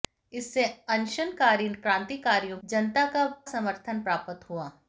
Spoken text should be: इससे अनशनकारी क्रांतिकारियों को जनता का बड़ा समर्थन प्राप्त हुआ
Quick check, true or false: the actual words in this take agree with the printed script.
false